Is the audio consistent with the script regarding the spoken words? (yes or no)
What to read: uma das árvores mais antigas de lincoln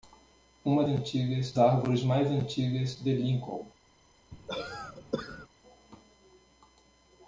no